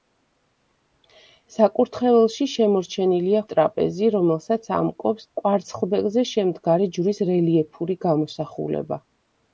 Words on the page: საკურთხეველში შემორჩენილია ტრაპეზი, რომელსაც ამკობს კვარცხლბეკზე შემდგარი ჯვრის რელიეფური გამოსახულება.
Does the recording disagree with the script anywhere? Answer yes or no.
no